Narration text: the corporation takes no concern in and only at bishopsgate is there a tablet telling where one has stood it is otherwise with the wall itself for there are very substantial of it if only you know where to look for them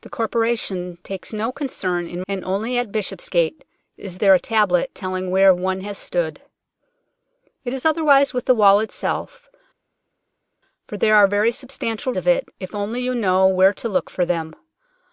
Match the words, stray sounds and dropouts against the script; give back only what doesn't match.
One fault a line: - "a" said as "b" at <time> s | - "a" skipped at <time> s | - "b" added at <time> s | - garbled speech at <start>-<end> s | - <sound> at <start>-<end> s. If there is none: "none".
none